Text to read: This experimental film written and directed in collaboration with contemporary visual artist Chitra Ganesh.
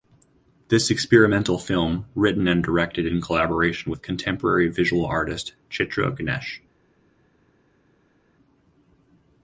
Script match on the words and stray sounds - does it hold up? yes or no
yes